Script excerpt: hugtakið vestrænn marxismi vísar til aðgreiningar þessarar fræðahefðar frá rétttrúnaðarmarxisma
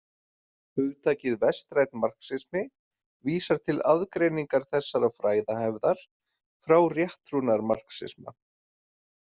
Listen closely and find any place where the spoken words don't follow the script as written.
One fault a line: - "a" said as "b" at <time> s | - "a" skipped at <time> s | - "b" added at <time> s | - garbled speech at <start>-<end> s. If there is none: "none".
none